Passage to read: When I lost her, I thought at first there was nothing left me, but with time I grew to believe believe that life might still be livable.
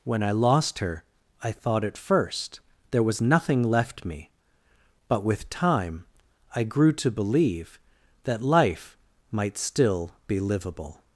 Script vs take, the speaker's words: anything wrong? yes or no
yes